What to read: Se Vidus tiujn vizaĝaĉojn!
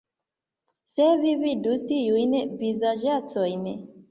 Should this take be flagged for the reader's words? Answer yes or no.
yes